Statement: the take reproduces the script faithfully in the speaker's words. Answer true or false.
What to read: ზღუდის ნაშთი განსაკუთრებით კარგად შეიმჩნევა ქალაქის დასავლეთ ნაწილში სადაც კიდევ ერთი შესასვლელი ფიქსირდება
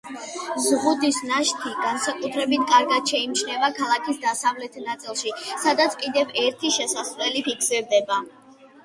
true